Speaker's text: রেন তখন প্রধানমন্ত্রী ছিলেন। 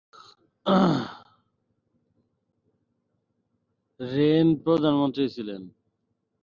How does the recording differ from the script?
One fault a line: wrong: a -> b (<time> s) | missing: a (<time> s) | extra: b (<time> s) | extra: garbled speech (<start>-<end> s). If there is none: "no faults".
missing: তখন (4.5 s)